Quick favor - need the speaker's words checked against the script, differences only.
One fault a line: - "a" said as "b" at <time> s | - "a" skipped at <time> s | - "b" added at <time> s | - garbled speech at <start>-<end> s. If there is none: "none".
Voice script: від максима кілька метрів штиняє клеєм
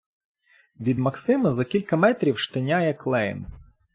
- "за" added at 1.5 s